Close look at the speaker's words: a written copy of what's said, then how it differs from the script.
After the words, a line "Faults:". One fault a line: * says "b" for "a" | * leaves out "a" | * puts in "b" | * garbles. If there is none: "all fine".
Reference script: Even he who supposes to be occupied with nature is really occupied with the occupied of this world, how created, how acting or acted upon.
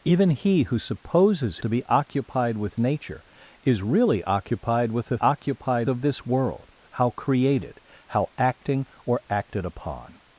Even he who supposes to be occupied with nature is really occupied with the occupied of this world, how created, how acting or acted upon.
Faults:
all fine